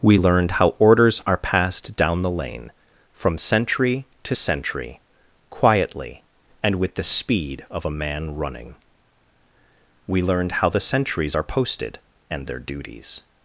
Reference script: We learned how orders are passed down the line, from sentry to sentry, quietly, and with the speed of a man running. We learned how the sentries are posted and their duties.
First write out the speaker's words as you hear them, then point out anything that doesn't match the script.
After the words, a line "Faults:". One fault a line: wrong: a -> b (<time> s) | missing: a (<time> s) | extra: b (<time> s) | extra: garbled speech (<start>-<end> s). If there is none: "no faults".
We learned how orders are passed down the lane, from sentry to sentry, quietly, and with the speed of a man running. We learned how the sentries are posted and their duties.
Faults:
wrong: line -> lane (2.3 s)